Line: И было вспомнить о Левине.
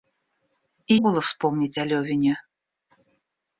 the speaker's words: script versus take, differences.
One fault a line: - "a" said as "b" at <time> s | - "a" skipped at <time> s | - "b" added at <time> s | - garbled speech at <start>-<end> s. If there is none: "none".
none